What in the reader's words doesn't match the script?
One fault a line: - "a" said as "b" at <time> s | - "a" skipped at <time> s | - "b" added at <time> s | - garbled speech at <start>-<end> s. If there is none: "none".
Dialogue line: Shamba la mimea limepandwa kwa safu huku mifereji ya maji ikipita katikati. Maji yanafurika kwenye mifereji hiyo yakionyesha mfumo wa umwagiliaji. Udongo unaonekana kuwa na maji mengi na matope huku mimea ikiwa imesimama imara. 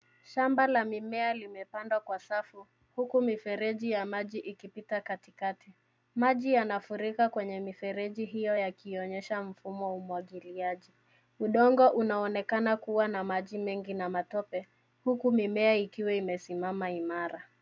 none